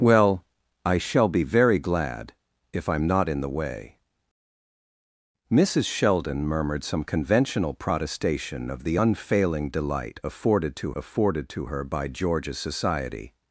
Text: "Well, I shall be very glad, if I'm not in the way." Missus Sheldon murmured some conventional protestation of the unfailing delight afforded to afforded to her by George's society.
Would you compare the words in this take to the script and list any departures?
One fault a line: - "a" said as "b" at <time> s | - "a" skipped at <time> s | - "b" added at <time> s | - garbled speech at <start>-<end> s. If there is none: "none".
none